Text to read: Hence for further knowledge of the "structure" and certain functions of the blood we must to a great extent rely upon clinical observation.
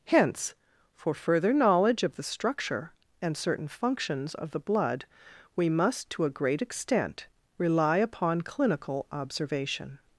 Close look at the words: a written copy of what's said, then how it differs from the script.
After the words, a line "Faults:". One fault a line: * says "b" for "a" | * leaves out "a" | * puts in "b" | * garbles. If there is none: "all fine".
Hence for further knowledge of the "structure" and certain functions of the blood we must to a great extent rely upon clinical observation.
Faults:
all fine